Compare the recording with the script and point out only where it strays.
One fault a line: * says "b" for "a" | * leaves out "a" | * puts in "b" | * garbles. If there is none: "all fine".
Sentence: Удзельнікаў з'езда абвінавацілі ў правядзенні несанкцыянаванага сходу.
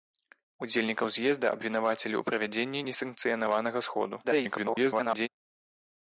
* garbles